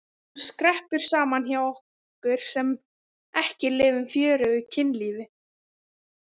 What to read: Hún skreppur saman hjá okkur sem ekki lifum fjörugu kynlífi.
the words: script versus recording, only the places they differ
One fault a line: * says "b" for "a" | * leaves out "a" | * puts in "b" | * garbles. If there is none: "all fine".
all fine